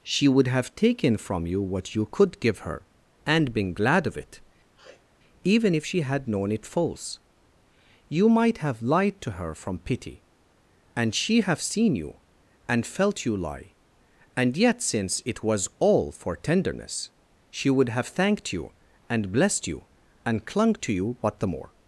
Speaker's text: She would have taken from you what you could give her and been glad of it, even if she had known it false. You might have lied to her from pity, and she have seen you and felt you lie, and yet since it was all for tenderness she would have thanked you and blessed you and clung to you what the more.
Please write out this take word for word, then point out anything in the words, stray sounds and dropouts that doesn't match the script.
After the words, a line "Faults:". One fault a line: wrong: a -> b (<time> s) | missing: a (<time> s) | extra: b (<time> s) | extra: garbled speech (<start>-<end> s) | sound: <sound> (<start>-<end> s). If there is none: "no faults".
She would have taken from you what you could give her and been glad of it, even if she had known it false. You might have lied to her from pity, and she have seen you and felt you lie, and yet since it was all for tenderness she would have thanked you and blessed you and clung to you what the more.
Faults:
sound: sniff (4.8-5.1 s)